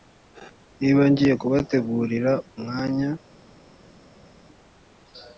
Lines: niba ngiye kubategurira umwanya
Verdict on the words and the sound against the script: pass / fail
pass